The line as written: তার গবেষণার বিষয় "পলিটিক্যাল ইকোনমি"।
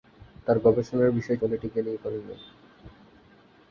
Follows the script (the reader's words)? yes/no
yes